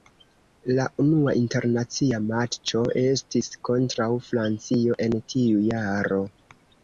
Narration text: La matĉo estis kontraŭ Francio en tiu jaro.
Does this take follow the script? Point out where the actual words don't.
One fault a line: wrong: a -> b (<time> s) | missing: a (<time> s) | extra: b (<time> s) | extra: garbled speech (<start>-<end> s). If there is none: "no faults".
extra: unua internacia (1.0 s)